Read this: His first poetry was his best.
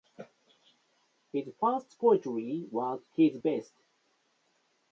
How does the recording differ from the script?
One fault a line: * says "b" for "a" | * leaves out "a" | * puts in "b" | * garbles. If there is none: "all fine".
all fine